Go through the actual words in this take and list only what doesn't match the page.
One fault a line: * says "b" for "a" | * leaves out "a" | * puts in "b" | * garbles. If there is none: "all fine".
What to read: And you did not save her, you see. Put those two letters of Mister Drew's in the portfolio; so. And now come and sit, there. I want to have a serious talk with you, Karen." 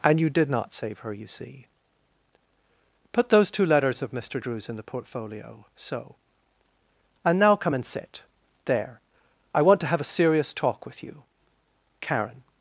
all fine